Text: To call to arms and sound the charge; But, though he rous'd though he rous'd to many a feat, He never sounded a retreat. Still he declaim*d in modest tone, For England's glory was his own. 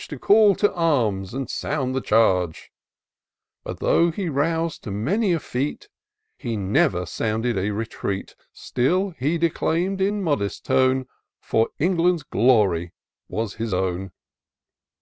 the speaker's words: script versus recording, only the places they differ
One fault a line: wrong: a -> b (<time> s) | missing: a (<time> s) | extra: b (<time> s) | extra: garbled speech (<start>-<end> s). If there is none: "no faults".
missing: though he rous'd (4.8 s)